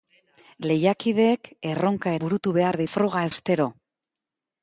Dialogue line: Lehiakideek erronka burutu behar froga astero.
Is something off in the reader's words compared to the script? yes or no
no